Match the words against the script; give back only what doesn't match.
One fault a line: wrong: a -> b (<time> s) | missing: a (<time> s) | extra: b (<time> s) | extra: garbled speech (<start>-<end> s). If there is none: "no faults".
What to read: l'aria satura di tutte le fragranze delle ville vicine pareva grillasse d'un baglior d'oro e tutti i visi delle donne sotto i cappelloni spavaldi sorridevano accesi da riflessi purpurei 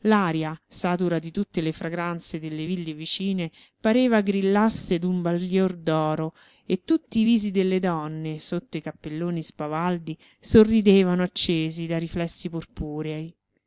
no faults